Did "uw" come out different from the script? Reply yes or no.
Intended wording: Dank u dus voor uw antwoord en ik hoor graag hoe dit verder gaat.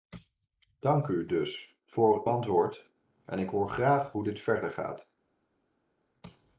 yes